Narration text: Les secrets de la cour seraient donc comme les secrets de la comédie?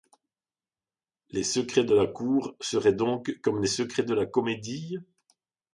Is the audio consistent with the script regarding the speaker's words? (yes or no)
yes